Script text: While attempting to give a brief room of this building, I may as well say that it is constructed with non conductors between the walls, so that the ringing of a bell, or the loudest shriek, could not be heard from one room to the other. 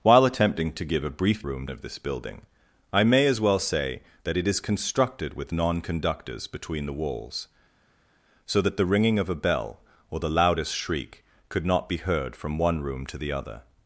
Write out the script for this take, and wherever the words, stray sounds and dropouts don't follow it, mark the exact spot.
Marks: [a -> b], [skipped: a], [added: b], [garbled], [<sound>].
While attempting to give a brief room of this building, I may as well say that it is constructed with non conductors between the walls, so that the ringing of a bell, or the loudest shriek, could not be heard from one room to the other.